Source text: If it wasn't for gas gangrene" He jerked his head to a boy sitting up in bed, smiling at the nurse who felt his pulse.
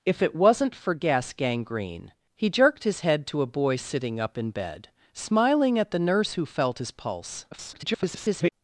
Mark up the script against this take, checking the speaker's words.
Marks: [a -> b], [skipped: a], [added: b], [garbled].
If it wasn't for gas gangrene" He jerked his head to a boy sitting up in bed, smiling at the nurse who felt his pulse. [garbled]